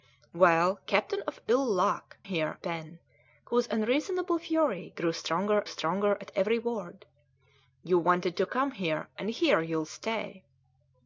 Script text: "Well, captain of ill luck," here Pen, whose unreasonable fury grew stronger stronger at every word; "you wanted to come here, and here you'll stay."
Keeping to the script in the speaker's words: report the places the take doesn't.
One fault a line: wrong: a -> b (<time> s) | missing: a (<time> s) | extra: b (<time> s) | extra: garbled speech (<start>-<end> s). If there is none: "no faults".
no faults